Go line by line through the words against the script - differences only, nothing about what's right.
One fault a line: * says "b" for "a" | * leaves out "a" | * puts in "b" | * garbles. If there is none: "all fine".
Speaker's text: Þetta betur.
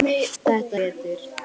all fine